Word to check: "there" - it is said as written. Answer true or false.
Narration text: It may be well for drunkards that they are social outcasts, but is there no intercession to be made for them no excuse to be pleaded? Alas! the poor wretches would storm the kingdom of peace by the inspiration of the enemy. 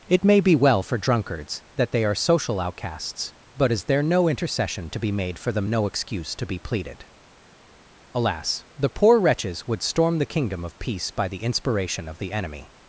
true